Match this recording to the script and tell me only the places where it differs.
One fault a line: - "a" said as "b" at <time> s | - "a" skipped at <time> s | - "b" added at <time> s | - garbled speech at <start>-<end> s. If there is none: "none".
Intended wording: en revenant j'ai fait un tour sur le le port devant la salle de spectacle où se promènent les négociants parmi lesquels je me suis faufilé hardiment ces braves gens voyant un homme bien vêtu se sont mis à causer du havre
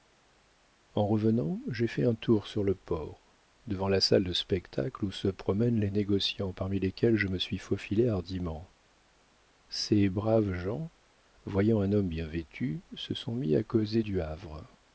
- "le" skipped at 2.7 s